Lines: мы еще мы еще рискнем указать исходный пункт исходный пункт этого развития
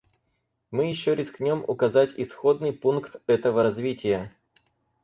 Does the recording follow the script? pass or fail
fail